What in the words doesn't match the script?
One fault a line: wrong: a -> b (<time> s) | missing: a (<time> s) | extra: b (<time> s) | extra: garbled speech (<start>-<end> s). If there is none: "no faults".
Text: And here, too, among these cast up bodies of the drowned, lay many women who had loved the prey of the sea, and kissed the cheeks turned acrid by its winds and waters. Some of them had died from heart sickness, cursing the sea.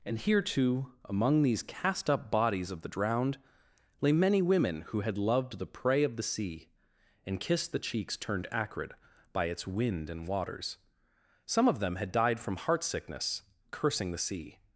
wrong: winds -> wind (9.7 s)